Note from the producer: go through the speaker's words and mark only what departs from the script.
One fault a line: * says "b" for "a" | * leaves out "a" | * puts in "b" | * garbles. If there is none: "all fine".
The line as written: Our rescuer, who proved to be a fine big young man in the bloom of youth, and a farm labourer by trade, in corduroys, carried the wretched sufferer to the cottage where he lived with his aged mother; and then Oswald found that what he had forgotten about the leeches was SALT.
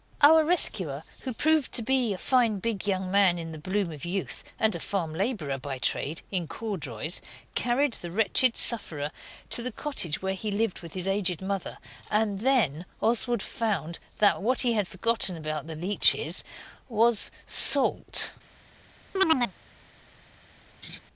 all fine